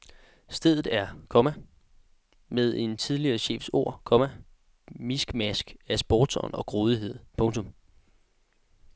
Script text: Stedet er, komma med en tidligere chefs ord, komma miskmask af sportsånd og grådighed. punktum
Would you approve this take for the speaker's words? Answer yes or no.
yes